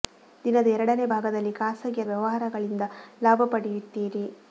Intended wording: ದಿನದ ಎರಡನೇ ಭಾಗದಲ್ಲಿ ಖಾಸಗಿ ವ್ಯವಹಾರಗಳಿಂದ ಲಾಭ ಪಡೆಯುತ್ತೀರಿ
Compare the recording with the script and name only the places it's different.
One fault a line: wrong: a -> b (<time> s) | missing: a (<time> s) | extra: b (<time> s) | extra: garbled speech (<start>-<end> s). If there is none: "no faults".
no faults